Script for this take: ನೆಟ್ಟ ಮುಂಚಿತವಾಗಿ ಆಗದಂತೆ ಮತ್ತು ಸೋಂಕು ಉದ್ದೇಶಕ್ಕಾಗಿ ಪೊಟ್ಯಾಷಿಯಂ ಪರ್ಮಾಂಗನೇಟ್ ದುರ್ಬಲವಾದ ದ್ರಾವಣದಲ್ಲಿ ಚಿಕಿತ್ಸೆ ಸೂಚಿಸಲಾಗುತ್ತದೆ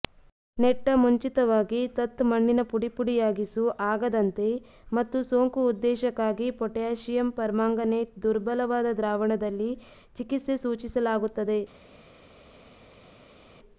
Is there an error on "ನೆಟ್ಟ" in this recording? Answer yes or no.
no